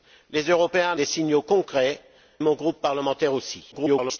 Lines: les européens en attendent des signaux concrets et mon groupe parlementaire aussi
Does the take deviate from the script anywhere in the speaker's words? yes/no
yes